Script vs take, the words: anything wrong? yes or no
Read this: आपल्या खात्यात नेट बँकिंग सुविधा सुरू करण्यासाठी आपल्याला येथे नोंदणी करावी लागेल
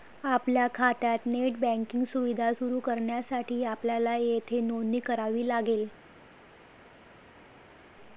no